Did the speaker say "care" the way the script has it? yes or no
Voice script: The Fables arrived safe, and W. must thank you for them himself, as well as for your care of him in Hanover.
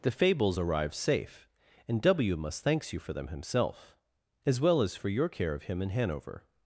yes